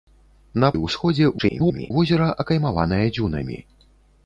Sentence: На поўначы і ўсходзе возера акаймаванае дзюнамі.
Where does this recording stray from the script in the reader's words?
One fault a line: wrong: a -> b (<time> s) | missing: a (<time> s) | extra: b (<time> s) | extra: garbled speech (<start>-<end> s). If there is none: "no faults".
missing: поўначы (0.7 s)
extra: garbled speech (1.4-1.9 s)